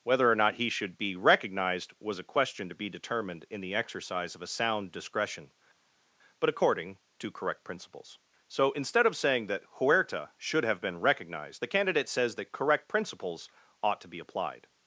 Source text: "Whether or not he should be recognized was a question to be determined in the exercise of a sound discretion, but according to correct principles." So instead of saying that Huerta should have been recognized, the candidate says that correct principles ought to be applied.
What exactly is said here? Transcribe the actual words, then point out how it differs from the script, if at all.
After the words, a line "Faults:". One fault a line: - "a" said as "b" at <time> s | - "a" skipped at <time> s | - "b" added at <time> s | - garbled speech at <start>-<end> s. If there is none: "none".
"Whether or not he should be recognized was a question to be determined in the exercise of a sound discretion, but according to correct principles." So instead of saying that Huerta should have been recognized, the candidate says that correct principles ought to be applied.
Faults:
none